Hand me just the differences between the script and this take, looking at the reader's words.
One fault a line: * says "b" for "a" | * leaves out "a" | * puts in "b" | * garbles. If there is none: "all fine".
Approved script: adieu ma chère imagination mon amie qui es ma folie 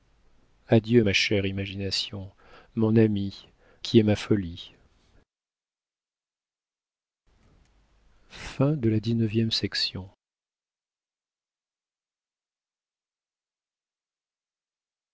all fine